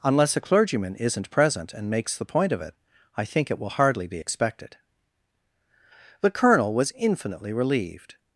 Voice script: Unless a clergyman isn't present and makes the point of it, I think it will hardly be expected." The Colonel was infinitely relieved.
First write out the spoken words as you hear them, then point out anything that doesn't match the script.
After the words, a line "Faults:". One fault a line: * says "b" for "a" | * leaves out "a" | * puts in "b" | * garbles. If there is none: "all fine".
Unless a clergyman isn't present and makes the point of it, I think it will hardly be expected." The Colonel was infinitely relieved.
Faults:
all fine